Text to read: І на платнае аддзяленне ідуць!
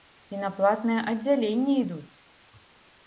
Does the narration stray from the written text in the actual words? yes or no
no